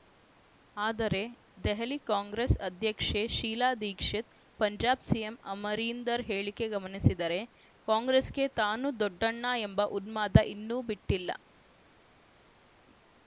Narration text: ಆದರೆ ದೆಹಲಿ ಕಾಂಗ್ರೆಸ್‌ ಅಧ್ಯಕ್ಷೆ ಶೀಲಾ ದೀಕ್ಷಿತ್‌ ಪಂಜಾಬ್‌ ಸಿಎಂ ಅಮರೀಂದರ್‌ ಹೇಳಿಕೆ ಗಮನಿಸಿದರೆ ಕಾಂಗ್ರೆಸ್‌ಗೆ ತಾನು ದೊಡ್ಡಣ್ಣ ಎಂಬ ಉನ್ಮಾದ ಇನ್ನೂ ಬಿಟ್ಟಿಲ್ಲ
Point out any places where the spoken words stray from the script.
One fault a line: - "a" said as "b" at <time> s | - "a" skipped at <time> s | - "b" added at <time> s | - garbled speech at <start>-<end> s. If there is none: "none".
none